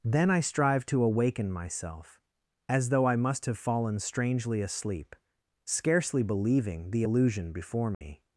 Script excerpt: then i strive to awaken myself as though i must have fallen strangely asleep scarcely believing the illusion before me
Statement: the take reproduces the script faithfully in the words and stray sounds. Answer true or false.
false